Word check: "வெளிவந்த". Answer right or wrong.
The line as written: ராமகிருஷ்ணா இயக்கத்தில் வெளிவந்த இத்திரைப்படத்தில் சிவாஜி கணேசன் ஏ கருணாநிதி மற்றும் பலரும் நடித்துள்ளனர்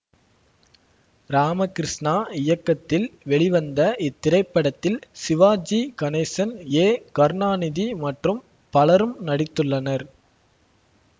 right